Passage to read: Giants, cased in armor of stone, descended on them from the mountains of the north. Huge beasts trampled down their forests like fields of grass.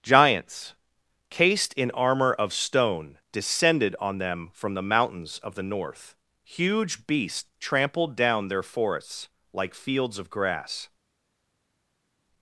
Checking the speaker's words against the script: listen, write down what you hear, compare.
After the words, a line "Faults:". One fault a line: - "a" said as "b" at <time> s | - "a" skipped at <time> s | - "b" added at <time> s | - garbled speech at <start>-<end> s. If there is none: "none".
Giants, cased in armor of stone, descended on them from the mountains of the north. Huge beasts trampled down their forests like fields of grass.
Faults:
none